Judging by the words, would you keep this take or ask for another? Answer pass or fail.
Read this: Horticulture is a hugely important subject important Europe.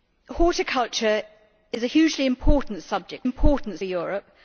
pass